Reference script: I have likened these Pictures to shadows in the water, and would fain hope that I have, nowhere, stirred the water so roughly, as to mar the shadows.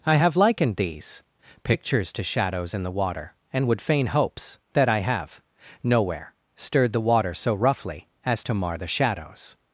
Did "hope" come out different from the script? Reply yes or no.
yes